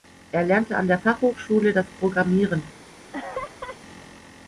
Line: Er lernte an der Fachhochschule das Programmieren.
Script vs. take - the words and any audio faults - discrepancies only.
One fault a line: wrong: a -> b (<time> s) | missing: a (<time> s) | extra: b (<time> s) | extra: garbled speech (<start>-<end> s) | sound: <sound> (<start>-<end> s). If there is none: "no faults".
sound: laugh (3.1-3.8 s)